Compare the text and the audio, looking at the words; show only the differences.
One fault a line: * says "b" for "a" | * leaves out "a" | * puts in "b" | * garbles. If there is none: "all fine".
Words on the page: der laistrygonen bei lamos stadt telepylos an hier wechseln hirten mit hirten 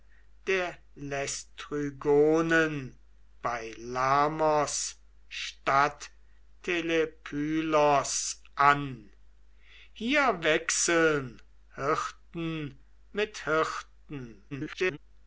* garbles